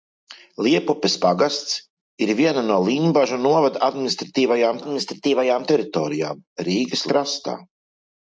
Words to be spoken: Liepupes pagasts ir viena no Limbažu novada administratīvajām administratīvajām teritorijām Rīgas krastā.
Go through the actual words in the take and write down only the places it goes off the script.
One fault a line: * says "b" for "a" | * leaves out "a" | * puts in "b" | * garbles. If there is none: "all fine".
all fine